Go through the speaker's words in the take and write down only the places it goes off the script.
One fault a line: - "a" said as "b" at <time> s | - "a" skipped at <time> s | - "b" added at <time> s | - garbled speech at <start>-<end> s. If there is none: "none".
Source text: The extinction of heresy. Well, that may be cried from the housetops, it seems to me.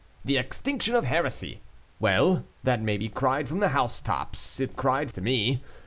- "seems" said as "cried" at 4.7 s